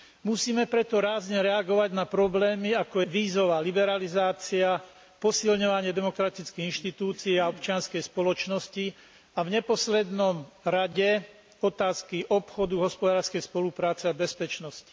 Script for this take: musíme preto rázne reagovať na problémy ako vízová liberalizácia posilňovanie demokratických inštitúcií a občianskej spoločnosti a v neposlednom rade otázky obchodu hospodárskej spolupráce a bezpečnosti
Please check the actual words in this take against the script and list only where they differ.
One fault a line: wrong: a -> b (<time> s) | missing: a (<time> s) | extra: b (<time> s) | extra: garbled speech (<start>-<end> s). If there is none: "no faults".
no faults